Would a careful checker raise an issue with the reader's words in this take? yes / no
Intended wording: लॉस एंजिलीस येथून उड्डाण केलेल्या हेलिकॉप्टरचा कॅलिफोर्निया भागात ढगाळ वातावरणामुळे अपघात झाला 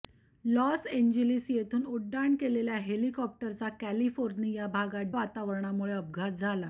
yes